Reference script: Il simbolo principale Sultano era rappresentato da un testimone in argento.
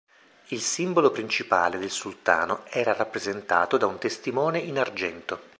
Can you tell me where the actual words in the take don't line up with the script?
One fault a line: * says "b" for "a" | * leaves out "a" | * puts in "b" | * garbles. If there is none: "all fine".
* puts in "del"